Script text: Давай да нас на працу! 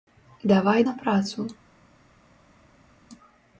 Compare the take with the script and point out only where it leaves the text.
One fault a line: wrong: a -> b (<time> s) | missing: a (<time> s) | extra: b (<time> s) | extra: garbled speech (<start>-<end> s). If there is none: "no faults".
missing: да нас (0.8 s)